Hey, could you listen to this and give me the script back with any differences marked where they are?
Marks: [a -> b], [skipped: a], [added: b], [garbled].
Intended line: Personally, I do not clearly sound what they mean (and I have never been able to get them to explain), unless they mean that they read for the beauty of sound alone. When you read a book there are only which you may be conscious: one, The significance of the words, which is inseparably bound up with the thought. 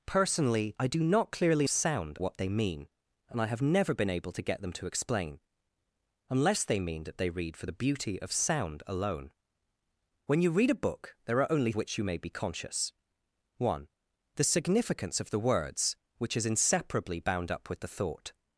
Personally, I do not clearly sound what they mean (and I have never been able to get them to explain), unless they mean that they read for the beauty of sound alone. When you read a book there are only which you may be conscious: one, The significance of the words, which is inseparably bound up with the thought.